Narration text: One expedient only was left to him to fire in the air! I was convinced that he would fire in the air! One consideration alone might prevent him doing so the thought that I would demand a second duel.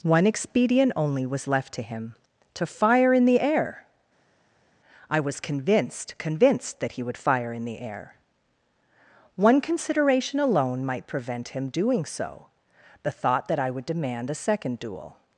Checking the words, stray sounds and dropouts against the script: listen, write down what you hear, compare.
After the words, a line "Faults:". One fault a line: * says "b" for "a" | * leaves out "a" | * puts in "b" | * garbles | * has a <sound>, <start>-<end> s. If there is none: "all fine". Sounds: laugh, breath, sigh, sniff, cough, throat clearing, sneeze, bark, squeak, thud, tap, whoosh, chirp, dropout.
One expedient only was left to him to fire in the air! I was convinced convinced that he would fire in the air! One consideration alone might prevent him doing so the thought that I would demand a second duel.
Faults:
* puts in "convinced"